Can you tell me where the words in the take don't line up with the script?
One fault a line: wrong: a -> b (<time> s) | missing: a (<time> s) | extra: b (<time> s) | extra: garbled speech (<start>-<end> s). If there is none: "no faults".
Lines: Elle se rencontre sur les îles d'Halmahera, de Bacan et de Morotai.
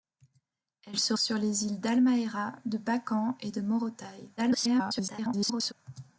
missing: rencontre (1.1 s)
extra: garbled speech (4.4-5.7 s)